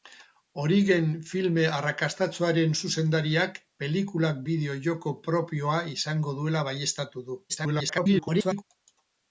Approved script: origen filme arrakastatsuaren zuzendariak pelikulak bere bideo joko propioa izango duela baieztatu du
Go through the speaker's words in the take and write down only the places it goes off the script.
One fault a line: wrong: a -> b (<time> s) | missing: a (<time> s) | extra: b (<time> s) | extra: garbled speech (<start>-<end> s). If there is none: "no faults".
missing: bere (4.4 s)
extra: garbled speech (7.5-8.6 s)